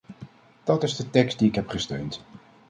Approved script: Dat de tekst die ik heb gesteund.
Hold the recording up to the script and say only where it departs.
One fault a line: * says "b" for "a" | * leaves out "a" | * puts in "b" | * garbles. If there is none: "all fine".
* puts in "is"